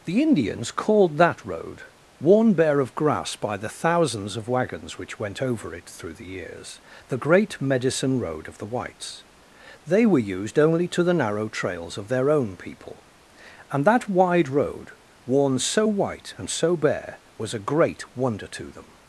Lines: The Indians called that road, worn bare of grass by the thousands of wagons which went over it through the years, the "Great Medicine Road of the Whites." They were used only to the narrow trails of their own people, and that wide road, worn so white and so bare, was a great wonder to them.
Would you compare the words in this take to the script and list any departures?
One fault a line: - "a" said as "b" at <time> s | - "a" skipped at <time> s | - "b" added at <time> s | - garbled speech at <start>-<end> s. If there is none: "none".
none